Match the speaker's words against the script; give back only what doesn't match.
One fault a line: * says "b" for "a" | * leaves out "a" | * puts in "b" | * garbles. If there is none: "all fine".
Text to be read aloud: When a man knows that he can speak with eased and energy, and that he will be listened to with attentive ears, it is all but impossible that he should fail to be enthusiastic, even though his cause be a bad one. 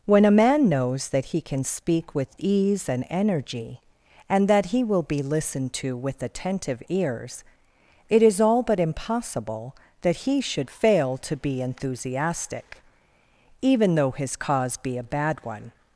* says "ease" for "eased"